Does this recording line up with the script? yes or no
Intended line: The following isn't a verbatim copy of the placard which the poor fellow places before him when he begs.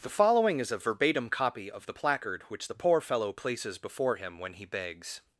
no